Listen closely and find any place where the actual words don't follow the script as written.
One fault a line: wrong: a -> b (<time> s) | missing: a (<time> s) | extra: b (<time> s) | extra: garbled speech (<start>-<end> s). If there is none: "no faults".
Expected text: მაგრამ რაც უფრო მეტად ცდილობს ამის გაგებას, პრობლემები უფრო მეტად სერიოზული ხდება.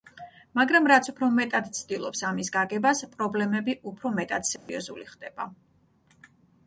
no faults